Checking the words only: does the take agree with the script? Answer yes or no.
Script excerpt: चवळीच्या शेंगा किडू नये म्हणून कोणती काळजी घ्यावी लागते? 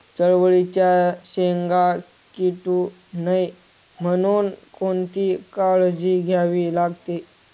yes